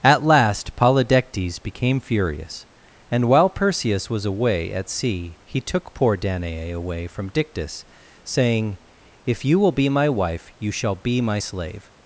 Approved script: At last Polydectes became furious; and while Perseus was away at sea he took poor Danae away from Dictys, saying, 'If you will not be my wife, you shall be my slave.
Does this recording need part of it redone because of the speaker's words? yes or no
yes